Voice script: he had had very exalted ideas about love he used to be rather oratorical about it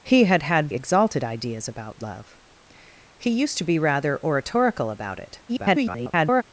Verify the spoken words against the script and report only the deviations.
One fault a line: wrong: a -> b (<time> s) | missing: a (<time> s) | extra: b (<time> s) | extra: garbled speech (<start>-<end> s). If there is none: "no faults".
missing: very (0.7 s)
extra: garbled speech (5.5-6.4 s)